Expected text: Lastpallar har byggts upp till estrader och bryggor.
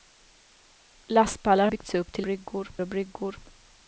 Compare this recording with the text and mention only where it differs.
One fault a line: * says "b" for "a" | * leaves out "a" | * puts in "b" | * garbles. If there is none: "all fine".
* leaves out "har"
* says "bryggor" for "estrader"